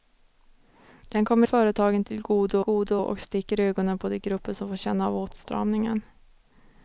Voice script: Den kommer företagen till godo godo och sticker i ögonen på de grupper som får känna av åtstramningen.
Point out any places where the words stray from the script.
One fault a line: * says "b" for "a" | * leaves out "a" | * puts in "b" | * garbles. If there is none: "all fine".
all fine